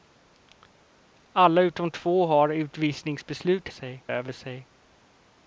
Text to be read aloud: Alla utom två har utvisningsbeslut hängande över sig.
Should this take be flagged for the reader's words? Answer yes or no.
yes